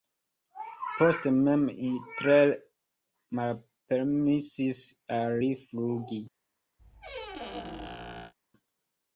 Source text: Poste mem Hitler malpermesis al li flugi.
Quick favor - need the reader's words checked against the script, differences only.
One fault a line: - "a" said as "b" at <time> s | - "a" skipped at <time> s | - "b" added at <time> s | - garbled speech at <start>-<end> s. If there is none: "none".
none